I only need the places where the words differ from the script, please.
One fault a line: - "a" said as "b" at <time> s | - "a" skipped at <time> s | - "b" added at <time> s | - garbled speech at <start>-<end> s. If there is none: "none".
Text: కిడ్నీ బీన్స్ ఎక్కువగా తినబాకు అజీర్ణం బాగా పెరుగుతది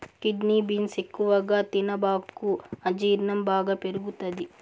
none